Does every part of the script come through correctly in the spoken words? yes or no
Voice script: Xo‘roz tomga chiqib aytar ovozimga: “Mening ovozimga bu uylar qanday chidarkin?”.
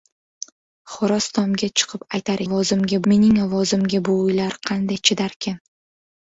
yes